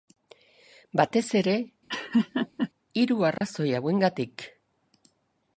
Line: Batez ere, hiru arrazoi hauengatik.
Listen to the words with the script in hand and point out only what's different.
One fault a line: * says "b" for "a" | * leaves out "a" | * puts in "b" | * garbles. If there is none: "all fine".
all fine